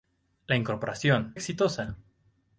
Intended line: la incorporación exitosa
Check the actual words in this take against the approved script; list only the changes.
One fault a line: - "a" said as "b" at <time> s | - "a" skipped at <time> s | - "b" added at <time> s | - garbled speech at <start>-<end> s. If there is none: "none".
none